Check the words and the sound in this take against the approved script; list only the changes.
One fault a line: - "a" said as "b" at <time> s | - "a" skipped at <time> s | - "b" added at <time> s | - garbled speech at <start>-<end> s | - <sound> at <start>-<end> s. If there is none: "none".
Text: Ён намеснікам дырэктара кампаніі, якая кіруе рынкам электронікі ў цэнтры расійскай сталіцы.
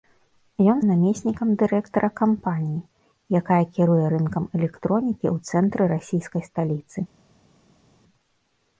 none